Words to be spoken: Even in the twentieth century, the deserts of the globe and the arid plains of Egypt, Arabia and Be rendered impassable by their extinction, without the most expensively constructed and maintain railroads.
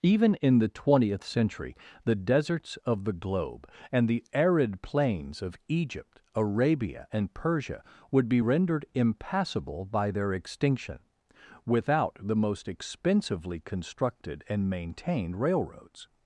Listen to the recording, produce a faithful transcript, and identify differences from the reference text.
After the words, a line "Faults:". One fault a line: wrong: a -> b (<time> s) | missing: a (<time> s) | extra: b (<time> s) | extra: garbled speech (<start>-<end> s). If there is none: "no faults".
Even in the twentieth century, the deserts of the globe and the arid plains of Egypt, Arabia and Persia would be rendered impassable by their extinction, without the most expensively constructed and maintained railroads.
Faults:
extra: Persia would (7.3 s)
wrong: maintain -> maintained (14.7 s)